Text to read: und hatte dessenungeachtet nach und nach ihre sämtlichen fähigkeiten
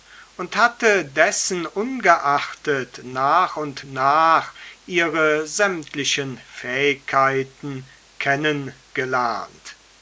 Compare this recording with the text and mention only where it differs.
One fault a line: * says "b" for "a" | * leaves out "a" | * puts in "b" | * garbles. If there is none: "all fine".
all fine